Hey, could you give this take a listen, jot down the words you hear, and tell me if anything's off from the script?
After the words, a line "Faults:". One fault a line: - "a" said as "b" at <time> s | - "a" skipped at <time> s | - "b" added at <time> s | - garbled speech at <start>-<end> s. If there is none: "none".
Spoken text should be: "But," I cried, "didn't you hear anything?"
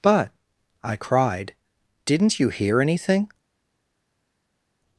"But," I cried, "didn't you hear anything?"
Faults:
none